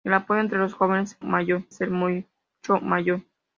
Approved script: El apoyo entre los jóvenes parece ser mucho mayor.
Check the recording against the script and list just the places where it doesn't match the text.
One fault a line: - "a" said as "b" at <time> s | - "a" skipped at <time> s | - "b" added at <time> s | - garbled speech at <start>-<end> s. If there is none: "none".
- "parece" said as "mayor" at 1.2 s